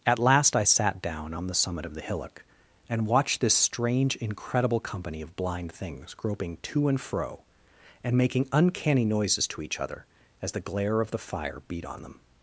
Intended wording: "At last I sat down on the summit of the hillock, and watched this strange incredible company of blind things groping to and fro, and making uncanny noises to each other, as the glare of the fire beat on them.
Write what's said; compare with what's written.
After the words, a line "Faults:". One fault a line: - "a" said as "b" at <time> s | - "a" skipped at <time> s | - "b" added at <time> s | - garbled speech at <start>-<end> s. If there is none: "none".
"At last I sat down on the summit of the hillock, and watched this strange incredible company of blind things groping to and fro, and making uncanny noises to each other, as the glare of the fire beat on them.
Faults:
none